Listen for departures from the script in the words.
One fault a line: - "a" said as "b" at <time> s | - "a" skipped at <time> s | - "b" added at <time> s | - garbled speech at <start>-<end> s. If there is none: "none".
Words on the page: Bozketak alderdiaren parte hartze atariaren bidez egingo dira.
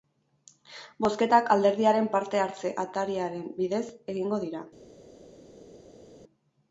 none